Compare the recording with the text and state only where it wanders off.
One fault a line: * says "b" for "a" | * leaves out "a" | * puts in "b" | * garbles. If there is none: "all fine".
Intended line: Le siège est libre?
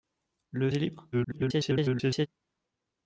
* leaves out "siège"
* garbles